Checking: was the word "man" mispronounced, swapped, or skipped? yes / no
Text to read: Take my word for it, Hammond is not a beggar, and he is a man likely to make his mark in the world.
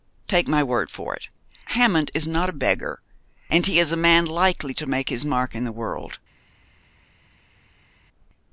no